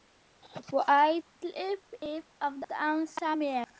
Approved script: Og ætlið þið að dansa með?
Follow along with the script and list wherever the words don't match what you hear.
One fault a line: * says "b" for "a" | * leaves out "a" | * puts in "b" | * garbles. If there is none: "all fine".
all fine